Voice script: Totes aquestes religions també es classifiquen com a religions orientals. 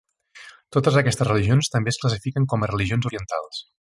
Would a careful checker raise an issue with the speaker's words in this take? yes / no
no